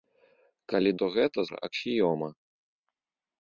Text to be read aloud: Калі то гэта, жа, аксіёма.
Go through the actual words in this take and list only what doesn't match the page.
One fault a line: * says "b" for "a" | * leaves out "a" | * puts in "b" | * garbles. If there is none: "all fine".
all fine